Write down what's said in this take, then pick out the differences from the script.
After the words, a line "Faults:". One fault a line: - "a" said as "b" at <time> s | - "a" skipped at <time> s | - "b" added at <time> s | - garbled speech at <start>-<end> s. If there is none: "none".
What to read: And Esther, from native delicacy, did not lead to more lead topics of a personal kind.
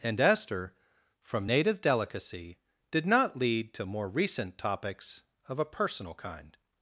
And Esther, from native delicacy, did not lead to more recent topics of a personal kind.
Faults:
- "lead" said as "recent" at 4.1 s